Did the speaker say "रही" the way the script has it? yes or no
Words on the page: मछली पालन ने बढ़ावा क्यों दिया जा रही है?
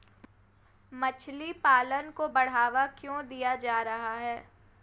no